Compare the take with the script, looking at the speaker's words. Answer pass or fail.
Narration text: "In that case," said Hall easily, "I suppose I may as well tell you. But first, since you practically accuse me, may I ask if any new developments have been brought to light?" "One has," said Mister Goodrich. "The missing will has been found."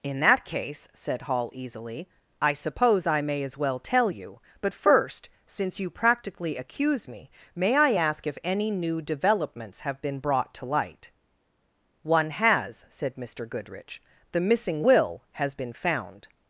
pass